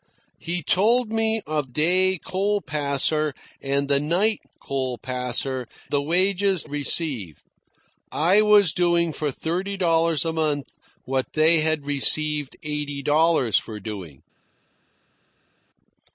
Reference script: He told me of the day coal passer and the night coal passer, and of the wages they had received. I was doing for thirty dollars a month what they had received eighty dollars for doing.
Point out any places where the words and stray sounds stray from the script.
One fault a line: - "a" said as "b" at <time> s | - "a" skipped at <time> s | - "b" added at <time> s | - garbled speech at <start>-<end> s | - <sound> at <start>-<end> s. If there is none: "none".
- "the" skipped at 1.7 s
- "and of" skipped at 5.7 s
- "they had" skipped at 6.7 s